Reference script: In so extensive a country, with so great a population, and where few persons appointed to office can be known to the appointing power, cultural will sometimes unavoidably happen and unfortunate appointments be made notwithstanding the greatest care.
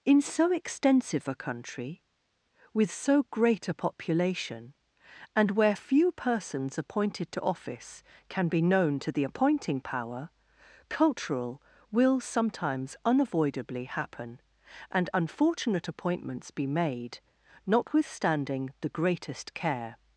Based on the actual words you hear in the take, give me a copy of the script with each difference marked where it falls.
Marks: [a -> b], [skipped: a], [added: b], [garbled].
In so extensive a country, with so great a population, and where few persons appointed to office can be known to the appointing power, cultural will sometimes unavoidably happen and unfortunate appointments be made notwithstanding the greatest care.